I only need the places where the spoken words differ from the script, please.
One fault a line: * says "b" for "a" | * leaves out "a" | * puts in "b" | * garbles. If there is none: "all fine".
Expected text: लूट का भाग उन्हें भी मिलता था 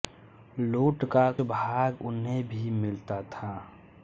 all fine